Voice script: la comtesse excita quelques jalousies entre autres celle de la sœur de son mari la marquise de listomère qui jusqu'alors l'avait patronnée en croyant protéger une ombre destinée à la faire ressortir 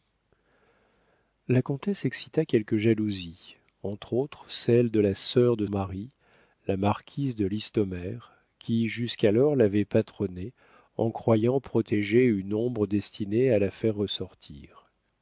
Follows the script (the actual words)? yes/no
no